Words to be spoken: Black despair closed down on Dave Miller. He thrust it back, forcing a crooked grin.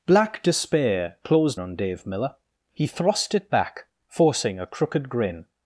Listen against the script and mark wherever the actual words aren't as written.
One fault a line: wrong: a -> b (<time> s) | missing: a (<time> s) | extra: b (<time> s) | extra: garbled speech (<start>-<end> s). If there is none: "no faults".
missing: down (1.6 s)